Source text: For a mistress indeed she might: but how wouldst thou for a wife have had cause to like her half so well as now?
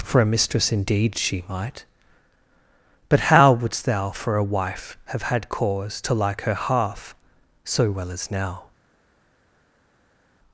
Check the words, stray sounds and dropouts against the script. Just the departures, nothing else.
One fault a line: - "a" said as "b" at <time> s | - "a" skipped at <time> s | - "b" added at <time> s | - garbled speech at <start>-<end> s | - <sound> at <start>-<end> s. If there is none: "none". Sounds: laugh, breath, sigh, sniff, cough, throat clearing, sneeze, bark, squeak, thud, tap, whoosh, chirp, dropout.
none